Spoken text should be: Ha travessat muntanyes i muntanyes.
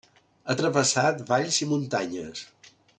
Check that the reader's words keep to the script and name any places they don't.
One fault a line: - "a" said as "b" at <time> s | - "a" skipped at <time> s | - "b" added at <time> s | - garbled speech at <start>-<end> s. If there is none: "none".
- "muntanyes" said as "valls" at 1.3 s